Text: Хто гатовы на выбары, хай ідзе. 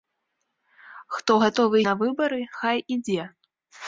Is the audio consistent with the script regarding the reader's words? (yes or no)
yes